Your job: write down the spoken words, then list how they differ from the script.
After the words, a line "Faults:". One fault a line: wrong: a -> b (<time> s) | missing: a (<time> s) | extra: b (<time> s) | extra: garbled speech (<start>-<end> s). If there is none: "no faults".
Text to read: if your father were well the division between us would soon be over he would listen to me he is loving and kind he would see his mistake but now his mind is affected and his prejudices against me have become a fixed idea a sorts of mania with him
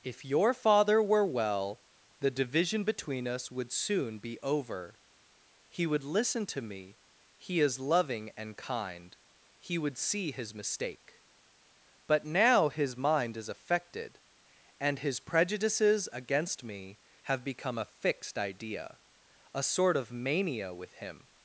if your father were well the division between us would soon be over he would listen to me he is loving and kind he would see his mistake but now his mind is affected and his prejudices against me have become a fixed idea a sort of mania with him
Faults:
wrong: sorts -> sort (19.6 s)